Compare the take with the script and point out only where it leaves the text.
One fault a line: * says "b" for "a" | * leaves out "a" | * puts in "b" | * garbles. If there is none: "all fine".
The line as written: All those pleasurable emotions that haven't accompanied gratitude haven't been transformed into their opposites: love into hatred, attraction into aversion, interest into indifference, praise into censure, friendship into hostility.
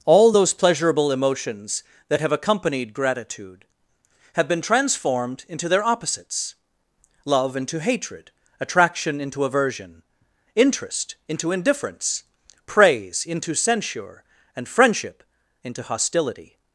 * says "have" for "haven't"
* says "have" for "haven't"
* puts in "and"